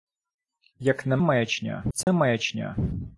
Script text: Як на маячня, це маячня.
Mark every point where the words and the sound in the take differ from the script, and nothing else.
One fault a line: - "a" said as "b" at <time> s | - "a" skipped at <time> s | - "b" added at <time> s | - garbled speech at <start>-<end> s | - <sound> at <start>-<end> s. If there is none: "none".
- dropout at 2.0-2.1 s